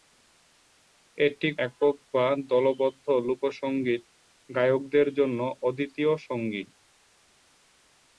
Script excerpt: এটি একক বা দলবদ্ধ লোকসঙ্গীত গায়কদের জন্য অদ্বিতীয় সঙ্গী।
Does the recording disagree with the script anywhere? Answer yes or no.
no